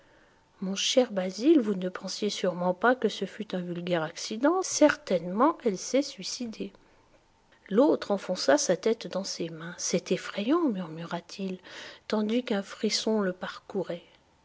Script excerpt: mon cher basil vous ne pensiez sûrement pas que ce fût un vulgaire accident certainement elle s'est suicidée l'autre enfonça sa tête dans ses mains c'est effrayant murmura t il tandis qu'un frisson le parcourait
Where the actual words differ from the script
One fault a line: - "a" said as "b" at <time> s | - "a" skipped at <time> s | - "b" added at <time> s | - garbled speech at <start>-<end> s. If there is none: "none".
none